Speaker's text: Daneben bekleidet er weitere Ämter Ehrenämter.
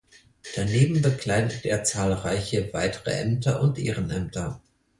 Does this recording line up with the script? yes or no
no